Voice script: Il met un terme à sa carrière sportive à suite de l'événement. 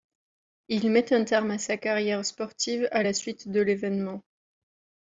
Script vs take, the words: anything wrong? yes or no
yes